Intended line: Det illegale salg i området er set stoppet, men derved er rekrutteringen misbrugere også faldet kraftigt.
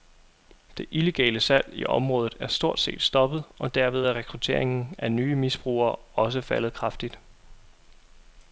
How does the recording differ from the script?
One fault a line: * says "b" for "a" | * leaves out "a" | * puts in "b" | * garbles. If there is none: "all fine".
* puts in "stort"
* says "og" for "men"
* puts in "af nye"